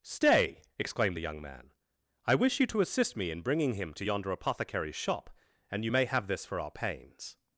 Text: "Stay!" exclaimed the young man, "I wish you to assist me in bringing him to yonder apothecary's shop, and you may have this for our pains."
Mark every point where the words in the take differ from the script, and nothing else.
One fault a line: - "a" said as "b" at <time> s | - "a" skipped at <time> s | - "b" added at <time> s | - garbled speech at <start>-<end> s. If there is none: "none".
none